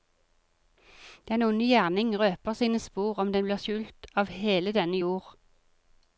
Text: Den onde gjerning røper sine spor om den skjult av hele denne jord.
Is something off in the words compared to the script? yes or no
yes